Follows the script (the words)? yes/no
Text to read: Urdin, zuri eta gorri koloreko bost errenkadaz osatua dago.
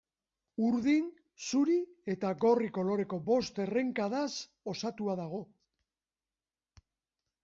yes